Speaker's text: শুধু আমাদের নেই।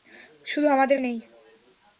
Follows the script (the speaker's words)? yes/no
yes